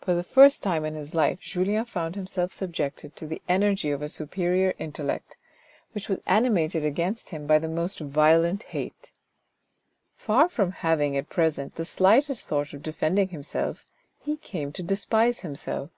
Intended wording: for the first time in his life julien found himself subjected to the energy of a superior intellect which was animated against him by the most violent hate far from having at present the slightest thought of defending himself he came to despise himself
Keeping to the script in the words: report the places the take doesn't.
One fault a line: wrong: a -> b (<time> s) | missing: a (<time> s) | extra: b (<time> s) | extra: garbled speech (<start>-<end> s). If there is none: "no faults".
no faults